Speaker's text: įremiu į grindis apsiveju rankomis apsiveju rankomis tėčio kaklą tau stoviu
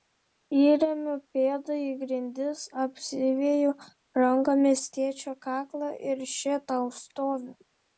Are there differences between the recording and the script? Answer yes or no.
yes